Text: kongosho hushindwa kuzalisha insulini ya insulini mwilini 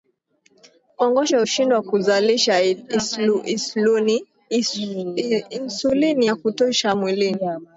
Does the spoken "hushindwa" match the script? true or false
true